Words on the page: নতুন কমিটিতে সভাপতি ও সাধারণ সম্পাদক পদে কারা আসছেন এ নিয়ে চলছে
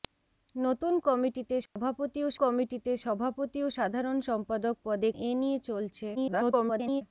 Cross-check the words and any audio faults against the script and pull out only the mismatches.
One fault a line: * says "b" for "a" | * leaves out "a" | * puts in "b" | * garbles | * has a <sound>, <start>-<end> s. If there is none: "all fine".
* has a dropout, 1.7-1.8 s
* puts in "কমিটিতে সভাপতি ও"
* leaves out "কারা আসছেন"
* garbles